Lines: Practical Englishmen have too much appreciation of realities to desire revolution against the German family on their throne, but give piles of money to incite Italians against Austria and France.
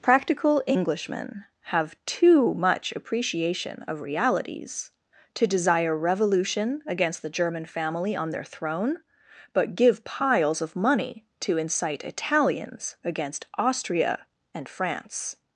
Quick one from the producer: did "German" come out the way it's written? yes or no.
yes